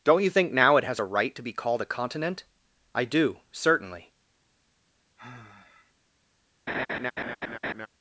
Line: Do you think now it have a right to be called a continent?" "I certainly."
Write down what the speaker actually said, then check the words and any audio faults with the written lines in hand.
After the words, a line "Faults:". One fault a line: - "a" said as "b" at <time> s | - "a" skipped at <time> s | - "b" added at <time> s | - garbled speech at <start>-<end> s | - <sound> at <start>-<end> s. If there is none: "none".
Don't you think now it has a right to be called a continent?" "I do, certainly."
Faults:
- "Do" said as "Don't" at 0.0 s
- "have" said as "has" at 0.8 s
- "do" added at 3.1 s
- sigh at 5.2-5.9 s
- laugh at 6.7-7.9 s